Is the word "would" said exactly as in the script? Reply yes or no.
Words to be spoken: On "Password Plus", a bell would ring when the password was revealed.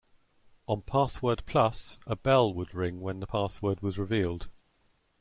yes